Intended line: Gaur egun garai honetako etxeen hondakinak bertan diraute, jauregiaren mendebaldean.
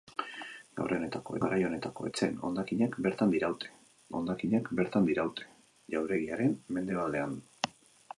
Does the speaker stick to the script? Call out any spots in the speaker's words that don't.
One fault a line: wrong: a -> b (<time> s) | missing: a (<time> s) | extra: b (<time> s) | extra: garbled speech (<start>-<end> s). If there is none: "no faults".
wrong: egun -> honetako (1.0 s)
extra: hondakinak bertan diraute (4.2 s)